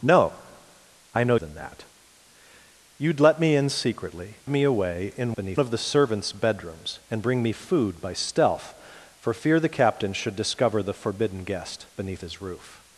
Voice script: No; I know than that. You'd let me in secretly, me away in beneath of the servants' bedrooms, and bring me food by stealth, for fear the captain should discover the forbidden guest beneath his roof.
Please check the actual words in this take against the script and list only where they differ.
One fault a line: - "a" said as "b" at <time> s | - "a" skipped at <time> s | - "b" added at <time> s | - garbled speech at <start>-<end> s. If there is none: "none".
none